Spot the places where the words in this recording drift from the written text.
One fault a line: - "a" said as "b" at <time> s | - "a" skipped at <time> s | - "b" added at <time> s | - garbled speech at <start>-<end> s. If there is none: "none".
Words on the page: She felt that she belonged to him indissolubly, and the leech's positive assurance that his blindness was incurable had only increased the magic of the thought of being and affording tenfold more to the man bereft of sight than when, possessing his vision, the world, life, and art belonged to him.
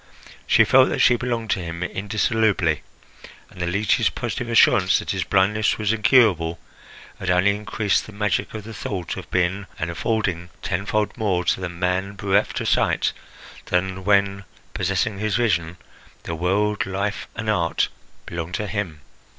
none